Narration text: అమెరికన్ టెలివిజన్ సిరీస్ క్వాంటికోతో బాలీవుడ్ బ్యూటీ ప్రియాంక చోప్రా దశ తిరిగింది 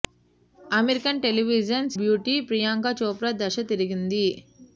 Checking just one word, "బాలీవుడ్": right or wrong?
wrong